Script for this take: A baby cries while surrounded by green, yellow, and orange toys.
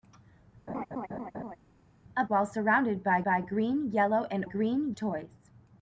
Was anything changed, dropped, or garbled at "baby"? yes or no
yes